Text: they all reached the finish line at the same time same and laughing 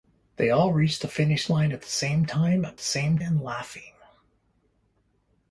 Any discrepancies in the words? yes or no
no